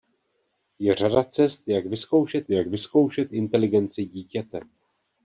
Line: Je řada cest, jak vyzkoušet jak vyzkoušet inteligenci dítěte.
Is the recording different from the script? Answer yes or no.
no